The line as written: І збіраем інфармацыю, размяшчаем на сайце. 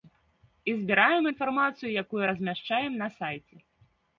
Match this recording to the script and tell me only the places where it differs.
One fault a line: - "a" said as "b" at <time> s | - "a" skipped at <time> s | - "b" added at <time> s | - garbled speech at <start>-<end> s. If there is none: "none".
- "якую" added at 2.0 s